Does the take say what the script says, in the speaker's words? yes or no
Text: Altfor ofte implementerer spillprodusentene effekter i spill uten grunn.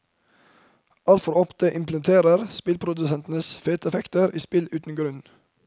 no